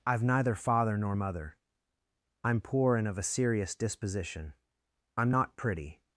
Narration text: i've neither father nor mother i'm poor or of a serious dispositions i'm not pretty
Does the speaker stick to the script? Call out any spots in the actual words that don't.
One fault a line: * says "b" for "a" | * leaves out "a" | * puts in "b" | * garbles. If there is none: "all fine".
* says "and" for "or"
* says "disposition" for "dispositions"